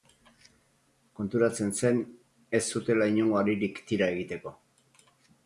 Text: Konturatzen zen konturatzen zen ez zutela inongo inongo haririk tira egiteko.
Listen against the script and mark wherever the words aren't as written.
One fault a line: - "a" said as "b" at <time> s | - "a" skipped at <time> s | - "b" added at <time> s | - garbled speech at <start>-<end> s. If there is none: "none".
- "konturatzen zen" skipped at 2.0 s
- "inongo" skipped at 3.4 s